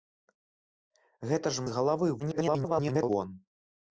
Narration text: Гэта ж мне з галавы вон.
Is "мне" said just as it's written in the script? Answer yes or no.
no